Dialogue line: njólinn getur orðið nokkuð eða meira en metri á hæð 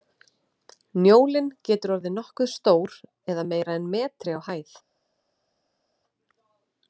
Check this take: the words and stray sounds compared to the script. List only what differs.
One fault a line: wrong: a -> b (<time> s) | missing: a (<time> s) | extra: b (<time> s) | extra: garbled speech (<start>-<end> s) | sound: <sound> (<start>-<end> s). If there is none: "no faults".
extra: stór (2.5 s)